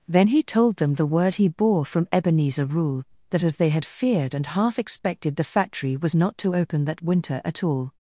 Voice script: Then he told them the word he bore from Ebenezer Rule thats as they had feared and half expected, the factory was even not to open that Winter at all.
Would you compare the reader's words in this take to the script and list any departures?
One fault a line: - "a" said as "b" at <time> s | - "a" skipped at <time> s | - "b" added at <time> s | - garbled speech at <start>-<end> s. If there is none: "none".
- "thats" said as "that" at 3.3 s
- "even" skipped at 6.1 s